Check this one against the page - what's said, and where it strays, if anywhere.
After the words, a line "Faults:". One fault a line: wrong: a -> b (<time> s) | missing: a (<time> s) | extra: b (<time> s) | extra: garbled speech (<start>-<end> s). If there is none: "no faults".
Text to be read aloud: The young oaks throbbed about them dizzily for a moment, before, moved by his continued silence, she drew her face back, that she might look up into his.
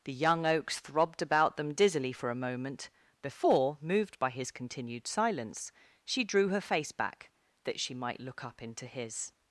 The young oaks throbbed about them dizzily for a moment, before, moved by his continued silence, she drew her face back, that she might look up into his.
Faults:
no faults